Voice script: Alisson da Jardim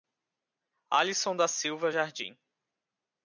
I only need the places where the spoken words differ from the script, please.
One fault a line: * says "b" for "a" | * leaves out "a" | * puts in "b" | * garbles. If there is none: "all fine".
* puts in "Silva"